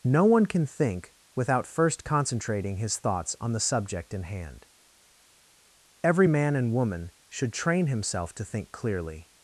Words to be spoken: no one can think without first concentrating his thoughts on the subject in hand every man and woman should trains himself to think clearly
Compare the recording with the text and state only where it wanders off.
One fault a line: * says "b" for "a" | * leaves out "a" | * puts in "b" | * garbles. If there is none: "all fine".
* says "train" for "trains"